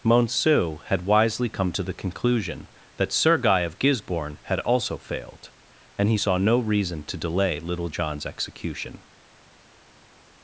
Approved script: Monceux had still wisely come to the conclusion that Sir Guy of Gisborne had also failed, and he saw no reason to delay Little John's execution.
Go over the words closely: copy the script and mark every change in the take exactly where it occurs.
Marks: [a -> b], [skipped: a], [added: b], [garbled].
Monceux had [skipped: still] wisely come to the conclusion that Sir Guy of Gisborne had also failed, and he saw no reason to delay Little John's execution.